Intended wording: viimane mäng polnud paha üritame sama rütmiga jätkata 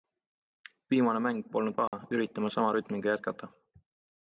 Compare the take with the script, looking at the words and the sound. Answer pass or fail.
fail